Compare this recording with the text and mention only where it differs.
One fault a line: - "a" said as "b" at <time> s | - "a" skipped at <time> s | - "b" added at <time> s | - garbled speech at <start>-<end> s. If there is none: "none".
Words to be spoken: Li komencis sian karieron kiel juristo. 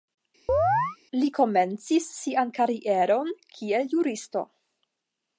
none